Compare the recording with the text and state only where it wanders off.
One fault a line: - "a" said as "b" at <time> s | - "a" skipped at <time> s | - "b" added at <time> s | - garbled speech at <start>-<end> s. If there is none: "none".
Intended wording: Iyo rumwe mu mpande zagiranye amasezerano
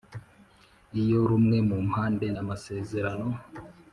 - "zagiranye" skipped at 2.3 s